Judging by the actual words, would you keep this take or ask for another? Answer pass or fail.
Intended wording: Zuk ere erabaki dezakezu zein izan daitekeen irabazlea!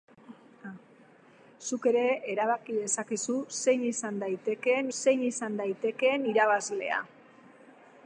fail